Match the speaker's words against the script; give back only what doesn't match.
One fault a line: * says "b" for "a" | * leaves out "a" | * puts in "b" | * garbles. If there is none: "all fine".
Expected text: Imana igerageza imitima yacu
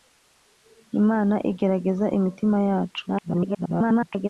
* garbles